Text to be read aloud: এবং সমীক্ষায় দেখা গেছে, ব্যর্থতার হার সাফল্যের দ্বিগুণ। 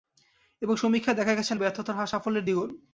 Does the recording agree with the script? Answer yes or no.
yes